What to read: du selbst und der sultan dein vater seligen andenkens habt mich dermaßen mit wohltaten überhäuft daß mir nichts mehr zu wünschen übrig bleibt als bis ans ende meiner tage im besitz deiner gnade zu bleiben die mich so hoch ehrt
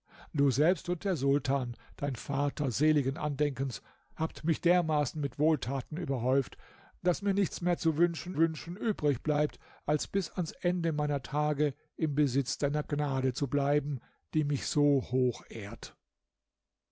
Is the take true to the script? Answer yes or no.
no